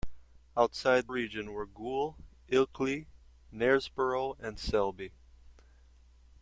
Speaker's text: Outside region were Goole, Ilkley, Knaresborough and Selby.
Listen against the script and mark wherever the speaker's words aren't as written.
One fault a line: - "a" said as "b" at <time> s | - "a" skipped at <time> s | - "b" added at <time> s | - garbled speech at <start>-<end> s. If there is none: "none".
none